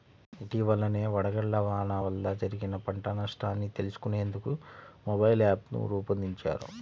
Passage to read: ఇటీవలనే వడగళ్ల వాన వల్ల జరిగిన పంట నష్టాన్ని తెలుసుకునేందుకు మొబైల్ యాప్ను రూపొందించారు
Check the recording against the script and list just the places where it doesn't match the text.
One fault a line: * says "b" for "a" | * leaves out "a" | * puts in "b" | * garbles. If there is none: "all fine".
all fine